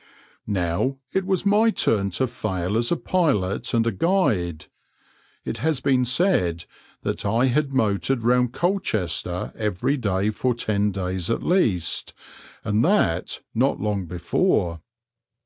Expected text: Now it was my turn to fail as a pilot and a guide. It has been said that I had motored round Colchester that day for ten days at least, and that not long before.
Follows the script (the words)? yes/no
no